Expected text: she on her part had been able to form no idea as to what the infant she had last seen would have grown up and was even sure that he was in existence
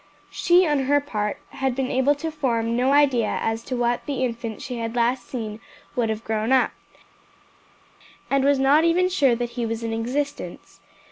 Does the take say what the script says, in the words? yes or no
no